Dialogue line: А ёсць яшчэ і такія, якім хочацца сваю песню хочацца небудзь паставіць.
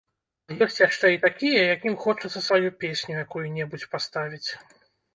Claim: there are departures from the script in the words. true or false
true